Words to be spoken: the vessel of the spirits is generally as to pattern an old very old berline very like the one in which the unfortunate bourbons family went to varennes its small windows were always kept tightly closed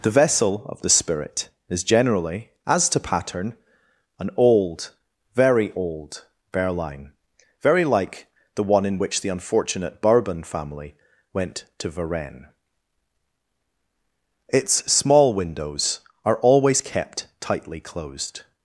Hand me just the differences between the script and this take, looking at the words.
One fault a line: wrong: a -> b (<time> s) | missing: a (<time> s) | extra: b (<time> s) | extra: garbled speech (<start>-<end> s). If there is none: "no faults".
wrong: spirits -> spirit (0.9 s)
wrong: bourbons -> bourbon (10.0 s)
wrong: were -> are (16.3 s)